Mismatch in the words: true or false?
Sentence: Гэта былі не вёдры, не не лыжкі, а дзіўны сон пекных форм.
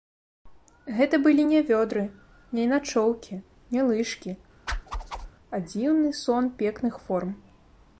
true